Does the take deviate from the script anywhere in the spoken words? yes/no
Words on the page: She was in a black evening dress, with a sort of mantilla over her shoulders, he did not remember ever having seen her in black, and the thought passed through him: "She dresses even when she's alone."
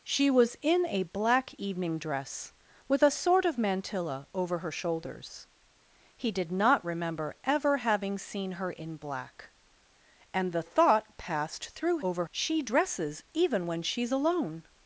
yes